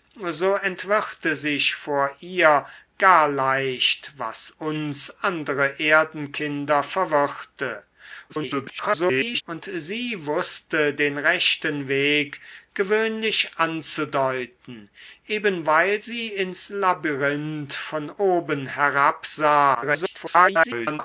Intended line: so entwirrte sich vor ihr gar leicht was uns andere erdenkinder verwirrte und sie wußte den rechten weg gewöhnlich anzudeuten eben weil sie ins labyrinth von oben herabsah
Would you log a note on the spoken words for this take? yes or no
yes